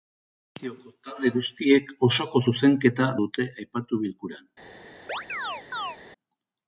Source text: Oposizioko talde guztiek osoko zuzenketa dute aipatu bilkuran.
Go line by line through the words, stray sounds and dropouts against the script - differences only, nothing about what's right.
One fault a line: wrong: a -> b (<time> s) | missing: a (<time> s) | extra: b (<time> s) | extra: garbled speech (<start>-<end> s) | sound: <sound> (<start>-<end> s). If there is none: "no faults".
sound: chirp (5.1-6.0 s)